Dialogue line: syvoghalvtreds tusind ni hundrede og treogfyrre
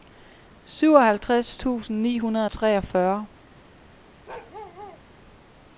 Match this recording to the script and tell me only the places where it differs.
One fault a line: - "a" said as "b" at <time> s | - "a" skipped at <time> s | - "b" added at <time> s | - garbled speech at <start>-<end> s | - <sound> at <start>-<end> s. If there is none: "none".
- bark at 4.3-5.0 s